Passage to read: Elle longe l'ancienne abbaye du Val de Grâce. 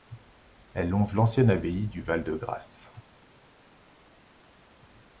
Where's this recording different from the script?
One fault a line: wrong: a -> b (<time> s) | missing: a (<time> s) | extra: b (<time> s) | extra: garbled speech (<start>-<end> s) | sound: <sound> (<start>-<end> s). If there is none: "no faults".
no faults